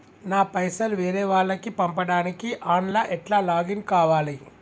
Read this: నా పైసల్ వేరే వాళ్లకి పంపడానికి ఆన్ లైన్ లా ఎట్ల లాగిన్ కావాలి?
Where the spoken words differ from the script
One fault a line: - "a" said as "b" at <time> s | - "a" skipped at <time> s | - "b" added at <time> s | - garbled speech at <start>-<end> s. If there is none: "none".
- "లైన్" skipped at 2.9 s